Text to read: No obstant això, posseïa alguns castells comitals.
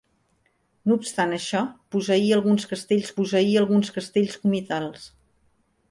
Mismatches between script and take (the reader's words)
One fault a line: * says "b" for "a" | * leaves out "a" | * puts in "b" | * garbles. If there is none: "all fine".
* puts in "posseïa alguns castells"